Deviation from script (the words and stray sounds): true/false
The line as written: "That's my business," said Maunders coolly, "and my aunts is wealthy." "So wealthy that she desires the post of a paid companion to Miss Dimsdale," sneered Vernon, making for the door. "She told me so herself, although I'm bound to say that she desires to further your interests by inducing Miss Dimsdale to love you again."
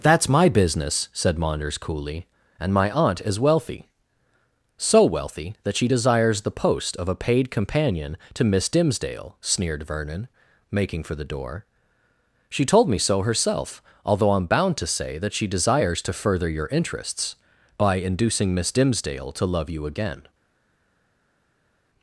true